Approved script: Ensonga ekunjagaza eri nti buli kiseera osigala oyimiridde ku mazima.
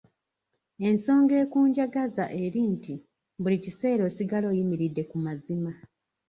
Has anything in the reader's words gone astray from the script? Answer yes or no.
no